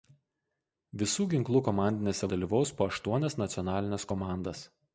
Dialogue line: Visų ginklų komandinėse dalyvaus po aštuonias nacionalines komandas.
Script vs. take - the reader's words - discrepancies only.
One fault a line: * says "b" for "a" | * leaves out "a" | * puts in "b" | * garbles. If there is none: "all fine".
all fine